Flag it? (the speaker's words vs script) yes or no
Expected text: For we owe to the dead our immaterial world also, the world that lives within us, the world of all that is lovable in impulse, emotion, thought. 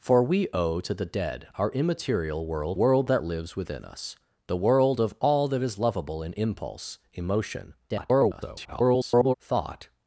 yes